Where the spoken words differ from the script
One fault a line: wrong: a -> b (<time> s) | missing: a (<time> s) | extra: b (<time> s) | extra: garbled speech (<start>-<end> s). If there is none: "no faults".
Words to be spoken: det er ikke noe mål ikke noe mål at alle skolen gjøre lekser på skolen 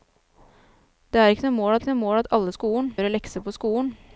no faults